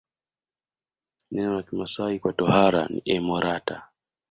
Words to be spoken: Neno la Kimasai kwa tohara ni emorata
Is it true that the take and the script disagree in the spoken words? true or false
false